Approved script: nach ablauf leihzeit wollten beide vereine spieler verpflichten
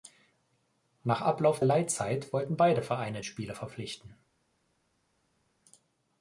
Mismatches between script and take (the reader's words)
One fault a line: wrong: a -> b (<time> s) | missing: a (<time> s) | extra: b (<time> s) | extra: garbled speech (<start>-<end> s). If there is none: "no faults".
no faults